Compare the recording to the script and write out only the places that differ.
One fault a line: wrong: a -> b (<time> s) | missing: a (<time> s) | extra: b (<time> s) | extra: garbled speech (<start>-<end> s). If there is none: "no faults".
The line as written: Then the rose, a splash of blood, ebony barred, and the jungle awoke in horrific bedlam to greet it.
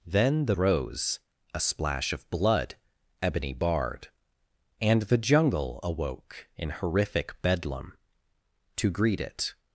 no faults